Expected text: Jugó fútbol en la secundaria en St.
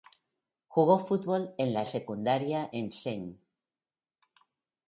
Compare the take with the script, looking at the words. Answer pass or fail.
pass